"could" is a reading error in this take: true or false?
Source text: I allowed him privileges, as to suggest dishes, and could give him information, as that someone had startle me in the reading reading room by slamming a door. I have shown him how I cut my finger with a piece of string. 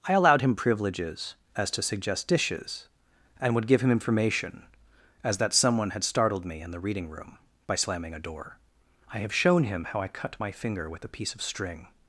true